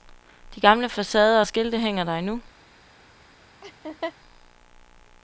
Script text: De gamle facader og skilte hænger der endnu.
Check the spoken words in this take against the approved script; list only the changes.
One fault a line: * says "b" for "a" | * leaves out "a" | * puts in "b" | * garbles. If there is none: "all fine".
all fine